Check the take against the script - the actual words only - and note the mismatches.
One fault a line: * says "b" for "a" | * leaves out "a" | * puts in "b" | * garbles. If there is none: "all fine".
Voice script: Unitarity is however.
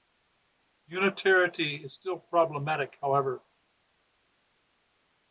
* puts in "still problematic"